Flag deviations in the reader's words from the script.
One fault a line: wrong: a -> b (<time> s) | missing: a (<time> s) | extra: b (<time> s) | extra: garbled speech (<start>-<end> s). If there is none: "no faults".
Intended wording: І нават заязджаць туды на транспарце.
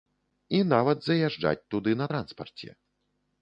no faults